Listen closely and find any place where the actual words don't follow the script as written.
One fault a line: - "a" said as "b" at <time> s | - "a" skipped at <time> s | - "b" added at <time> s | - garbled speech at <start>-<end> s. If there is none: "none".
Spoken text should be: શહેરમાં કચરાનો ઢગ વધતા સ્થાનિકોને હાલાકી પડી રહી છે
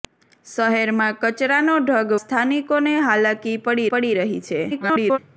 - "વધતા" skipped at 2.2 s
- "પડી" added at 3.9 s
- garbled speech at 4.7-5.2 s